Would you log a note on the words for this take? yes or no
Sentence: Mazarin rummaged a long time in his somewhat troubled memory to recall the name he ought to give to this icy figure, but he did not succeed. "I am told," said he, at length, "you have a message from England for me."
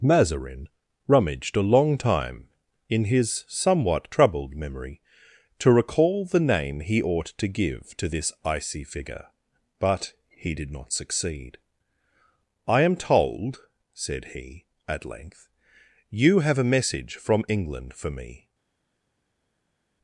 no